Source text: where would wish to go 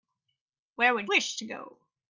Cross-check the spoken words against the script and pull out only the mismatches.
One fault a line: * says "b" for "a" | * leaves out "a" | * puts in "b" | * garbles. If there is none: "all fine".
all fine